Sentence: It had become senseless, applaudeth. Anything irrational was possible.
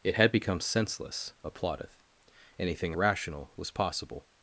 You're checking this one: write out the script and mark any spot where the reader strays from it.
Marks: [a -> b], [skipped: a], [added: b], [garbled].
It had become senseless, applaudeth. Anything irrational was possible.